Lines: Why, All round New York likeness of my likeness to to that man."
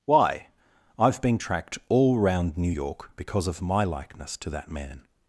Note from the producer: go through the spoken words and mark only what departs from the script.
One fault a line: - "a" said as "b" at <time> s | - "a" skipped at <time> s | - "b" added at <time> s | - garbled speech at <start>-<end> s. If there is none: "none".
- "I've been tracked" added at 1.0 s
- "likeness" said as "because" at 3.2 s
- "to" skipped at 4.5 s